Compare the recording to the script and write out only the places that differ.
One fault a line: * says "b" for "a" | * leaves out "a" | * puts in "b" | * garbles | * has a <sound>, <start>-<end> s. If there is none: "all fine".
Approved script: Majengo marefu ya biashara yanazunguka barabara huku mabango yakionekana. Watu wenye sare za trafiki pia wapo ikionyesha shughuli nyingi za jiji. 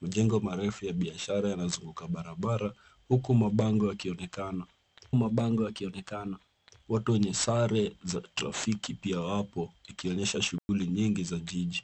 * puts in "mabango yakionekana"
* has a dropout, 10.6-10.7 s